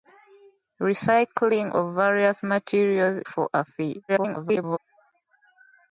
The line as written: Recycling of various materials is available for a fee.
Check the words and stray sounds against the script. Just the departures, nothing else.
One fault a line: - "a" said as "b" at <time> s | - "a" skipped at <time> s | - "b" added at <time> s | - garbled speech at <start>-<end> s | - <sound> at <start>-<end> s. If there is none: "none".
- "is available" skipped at 3.2 s
- garbled speech at 4.1-4.8 s